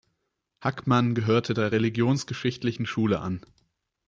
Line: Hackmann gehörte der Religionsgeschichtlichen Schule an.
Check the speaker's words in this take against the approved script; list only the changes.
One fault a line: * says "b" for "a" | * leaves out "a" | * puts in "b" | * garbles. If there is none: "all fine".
all fine